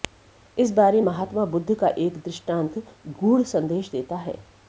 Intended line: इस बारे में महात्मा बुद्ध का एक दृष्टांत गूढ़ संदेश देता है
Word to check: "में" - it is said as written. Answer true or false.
false